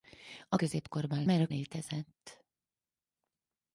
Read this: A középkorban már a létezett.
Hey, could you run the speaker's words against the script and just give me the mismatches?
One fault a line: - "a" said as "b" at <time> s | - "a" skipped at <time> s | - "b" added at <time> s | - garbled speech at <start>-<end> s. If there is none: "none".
none